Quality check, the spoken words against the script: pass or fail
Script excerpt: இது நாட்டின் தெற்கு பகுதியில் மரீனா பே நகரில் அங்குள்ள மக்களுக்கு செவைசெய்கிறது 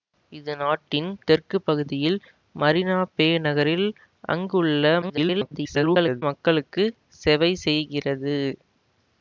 fail